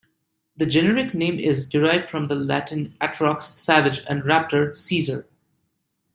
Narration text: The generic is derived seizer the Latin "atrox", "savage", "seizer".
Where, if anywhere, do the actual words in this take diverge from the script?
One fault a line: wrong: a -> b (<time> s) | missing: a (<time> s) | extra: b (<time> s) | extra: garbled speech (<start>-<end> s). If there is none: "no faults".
extra: name (1.1 s)
wrong: seizer -> from (2.1 s)
extra: and raptor (4.1 s)